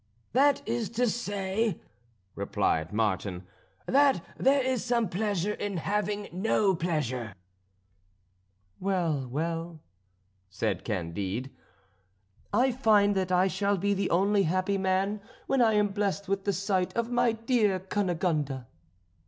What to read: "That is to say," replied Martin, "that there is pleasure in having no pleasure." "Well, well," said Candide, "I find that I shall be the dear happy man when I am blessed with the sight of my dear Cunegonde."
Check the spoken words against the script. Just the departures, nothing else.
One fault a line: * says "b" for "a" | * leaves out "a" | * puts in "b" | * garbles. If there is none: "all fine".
* puts in "some"
* says "only" for "dear"